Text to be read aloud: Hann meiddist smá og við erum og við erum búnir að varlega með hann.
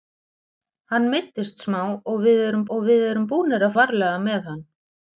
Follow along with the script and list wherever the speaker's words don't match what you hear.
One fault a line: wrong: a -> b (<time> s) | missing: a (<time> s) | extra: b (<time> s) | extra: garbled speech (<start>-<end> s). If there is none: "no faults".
no faults